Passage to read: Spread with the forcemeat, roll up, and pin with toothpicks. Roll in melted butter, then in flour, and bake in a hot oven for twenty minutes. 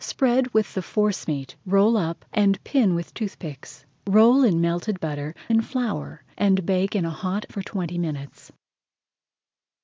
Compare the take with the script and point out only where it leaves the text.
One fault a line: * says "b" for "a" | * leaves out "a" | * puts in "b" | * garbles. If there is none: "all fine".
* leaves out "then"
* leaves out "oven"